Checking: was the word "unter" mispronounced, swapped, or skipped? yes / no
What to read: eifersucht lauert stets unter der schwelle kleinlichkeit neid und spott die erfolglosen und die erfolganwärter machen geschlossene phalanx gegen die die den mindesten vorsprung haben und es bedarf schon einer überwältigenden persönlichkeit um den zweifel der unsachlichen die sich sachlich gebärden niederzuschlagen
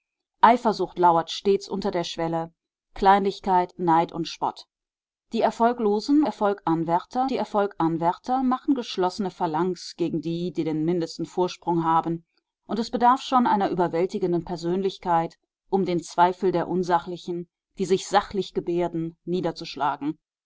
no